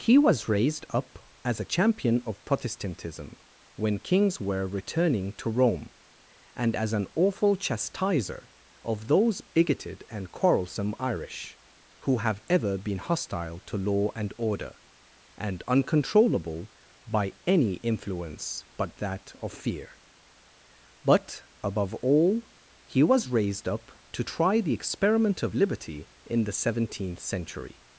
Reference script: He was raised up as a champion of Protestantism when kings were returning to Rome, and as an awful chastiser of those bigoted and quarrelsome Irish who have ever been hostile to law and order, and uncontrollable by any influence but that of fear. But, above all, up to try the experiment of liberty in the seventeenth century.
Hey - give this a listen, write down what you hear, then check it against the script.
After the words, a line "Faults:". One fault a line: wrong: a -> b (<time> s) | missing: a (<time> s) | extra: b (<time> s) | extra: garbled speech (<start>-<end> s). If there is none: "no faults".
He was raised up as a champion of Protestantism when kings were returning to Rome, and as an awful chastiser of those bigoted and quarrelsome Irish who have ever been hostile to law and order, and uncontrollable by any influence but that of fear. But, above all, he was raised up to try the experiment of liberty in the seventeenth century.
Faults:
extra: he was raised (22.9 s)